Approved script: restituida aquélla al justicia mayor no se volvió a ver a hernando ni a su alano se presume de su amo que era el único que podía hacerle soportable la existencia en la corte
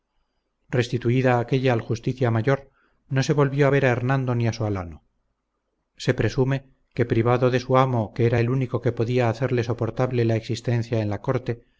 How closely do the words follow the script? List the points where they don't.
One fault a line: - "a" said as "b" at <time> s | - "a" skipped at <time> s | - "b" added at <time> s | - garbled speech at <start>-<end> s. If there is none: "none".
- "que privado" added at 6.9 s